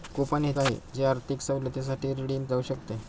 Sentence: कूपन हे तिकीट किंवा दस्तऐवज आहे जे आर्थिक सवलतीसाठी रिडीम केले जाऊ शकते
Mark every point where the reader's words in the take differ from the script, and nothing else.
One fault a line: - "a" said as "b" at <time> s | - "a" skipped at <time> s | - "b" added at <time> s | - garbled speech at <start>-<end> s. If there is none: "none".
- "तिकीट किंवा दस्तऐवज" skipped at 0.5 s
- "केले" skipped at 2.4 s